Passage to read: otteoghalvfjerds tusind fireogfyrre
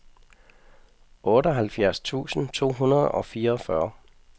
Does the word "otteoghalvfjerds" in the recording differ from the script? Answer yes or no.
no